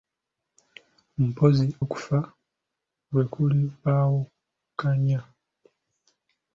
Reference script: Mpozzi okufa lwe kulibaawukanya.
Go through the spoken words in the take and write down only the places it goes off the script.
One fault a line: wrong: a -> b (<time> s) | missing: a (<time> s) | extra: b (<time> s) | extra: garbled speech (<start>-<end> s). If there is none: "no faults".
no faults